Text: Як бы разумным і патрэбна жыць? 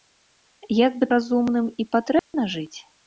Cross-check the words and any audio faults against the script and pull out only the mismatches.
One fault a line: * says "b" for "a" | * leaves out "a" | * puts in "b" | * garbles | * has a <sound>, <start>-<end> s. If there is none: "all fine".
* has a dropout, 2.2-2.3 s